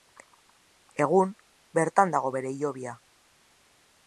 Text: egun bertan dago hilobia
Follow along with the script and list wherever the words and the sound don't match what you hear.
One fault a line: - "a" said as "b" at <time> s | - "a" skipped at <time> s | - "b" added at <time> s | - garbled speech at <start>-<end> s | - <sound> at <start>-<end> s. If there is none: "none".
- "bere" added at 2.4 s